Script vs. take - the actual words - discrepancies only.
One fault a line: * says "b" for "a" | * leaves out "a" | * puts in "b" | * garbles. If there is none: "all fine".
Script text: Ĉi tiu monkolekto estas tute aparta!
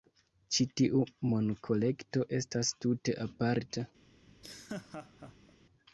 all fine